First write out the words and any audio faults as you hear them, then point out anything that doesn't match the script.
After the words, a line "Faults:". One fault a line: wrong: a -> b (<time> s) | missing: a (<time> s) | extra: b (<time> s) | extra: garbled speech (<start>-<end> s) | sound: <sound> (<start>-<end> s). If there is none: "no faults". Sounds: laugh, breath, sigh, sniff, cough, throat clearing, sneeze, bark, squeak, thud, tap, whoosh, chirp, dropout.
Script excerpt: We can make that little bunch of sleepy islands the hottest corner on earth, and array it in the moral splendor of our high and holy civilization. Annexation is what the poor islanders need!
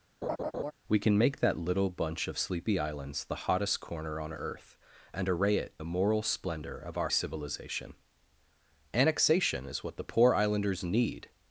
We can make that little bunch of sleepy islands the hottest corner on earth, and array it the moral splendor of our civilization. Annexation is what the poor islanders need!
Faults:
sound: laugh (0.2-0.7 s)
missing: in (5.7 s)
missing: high and holy (7.1 s)